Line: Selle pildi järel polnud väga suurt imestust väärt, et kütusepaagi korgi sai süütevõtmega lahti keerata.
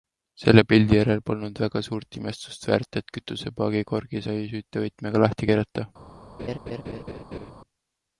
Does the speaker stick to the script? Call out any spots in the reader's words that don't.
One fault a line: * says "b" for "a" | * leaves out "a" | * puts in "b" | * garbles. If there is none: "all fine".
all fine